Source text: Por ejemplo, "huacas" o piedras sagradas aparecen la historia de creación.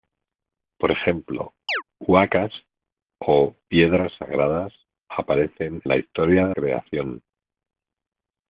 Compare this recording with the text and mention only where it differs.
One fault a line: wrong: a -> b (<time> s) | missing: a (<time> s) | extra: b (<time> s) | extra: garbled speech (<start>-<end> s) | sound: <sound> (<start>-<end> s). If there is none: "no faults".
sound: chirp (1.7-1.8 s)